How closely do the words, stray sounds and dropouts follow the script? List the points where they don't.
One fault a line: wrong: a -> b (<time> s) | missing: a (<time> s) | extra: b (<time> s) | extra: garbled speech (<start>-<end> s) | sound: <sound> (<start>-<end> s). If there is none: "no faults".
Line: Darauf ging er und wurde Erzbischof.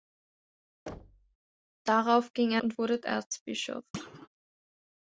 sound: thud (0.9-1.4 s)
sound: thud (3.9-4.3 s)